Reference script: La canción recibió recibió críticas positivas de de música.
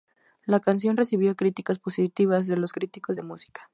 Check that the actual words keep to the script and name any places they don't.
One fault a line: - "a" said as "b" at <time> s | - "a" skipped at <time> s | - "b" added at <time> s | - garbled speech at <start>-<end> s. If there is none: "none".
- "recibió" skipped at 1.3 s
- "los críticos" added at 2.5 s